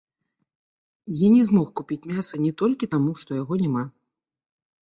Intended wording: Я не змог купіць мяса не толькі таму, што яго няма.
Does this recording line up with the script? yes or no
yes